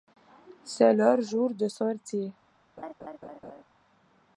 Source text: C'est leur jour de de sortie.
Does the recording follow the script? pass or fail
fail